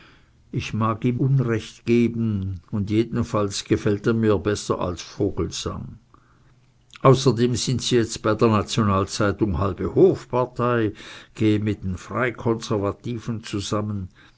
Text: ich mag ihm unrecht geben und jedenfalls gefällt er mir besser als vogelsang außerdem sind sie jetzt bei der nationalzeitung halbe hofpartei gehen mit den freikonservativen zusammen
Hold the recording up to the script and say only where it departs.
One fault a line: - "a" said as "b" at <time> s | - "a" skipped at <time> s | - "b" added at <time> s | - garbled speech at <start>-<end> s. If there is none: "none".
none